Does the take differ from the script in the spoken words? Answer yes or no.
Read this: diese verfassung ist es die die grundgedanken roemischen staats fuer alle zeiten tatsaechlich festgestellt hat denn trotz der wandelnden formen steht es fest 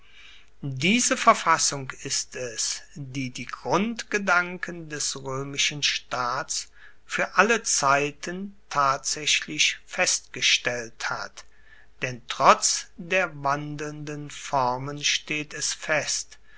yes